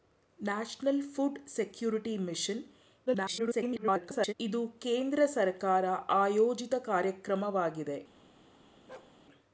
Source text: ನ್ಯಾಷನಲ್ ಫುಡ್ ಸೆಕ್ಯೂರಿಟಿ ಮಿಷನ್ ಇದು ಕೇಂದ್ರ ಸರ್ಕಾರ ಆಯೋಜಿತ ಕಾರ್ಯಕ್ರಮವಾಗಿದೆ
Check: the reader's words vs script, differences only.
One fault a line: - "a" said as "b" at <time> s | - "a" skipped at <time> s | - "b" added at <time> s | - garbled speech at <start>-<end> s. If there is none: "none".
- garbled speech at 3.1-4.3 s